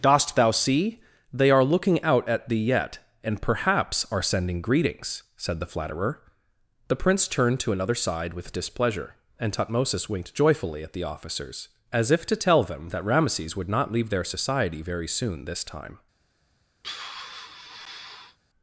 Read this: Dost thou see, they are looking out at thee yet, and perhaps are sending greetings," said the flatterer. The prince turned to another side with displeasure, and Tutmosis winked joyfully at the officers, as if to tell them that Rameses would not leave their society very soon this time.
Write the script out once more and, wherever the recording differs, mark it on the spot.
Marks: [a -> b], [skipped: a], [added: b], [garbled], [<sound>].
Dost thou see, they are looking out at thee yet, and perhaps are sending greetings," said the flatterer. The prince turned to another side with displeasure, and Tutmosis winked joyfully at the officers, as if to tell them that Rameses would not leave their society very soon this time. [sigh]